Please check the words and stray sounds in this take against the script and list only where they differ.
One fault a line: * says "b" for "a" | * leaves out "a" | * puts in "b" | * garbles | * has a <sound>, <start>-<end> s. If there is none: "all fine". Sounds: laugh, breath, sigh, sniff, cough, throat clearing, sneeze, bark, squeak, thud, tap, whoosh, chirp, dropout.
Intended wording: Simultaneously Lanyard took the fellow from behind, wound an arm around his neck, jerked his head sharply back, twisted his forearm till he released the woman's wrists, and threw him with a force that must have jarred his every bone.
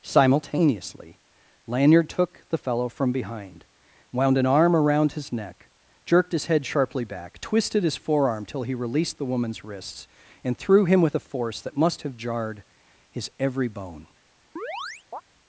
* has a chirp, 14.6-15.2 s